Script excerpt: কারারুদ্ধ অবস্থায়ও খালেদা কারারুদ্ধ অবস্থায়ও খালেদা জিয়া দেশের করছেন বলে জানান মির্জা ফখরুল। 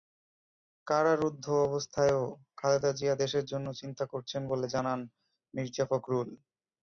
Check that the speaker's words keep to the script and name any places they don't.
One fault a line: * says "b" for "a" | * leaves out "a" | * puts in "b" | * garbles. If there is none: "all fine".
* says "জিয়া দেশের জন্য চিন্তা" for "কারারুদ্ধ অবস্থায়ও খালেদা জিয়া দেশের"